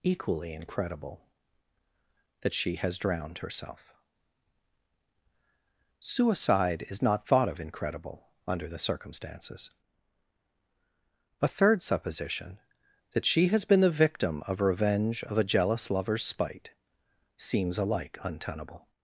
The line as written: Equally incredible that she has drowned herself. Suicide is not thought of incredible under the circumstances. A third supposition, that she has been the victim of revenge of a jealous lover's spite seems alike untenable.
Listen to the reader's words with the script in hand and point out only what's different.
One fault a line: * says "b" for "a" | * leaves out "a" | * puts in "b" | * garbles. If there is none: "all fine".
all fine